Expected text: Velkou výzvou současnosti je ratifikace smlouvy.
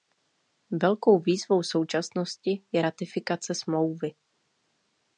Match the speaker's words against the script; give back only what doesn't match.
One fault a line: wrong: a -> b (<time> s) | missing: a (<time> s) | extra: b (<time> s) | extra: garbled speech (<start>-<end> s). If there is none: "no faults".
no faults